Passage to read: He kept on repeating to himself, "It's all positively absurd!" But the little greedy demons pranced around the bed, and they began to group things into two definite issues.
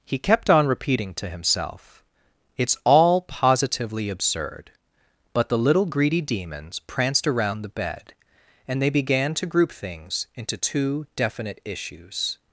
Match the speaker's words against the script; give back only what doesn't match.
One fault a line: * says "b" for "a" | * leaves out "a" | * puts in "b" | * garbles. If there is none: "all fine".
all fine